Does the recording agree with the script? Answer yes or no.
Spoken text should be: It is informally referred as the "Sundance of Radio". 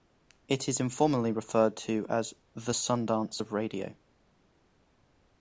no